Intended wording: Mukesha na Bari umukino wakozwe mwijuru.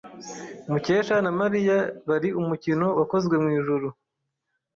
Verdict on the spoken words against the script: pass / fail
fail